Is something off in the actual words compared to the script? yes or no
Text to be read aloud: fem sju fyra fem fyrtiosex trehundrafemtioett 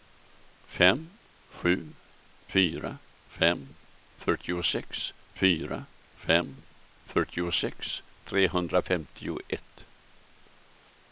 yes